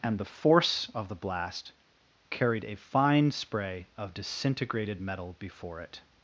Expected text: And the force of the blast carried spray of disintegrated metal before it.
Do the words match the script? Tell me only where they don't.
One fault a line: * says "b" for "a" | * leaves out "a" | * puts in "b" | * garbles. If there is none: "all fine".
* puts in "a fine"